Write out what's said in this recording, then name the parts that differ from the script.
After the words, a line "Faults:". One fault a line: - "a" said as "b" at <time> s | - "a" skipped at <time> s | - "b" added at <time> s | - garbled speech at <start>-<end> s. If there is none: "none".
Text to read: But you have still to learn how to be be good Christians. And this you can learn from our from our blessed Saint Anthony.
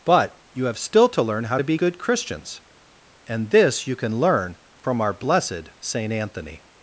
But you have still to learn how to be good Christians. And this you can learn from our blessed Saint Anthony.
Faults:
- "be" skipped at 1.8 s
- "from our" skipped at 5.1 s